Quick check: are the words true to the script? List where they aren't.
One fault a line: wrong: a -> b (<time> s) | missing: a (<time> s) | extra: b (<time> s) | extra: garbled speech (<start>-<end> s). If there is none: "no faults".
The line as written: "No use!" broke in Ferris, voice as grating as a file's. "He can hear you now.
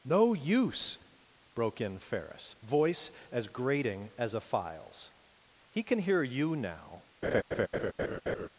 no faults